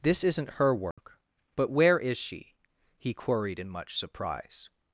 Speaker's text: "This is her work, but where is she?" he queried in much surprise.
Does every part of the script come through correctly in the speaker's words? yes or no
no